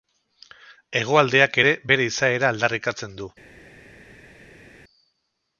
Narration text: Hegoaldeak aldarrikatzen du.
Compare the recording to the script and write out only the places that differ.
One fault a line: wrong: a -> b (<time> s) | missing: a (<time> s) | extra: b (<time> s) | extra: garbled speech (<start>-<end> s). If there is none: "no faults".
extra: ere bere izaera (1.6 s)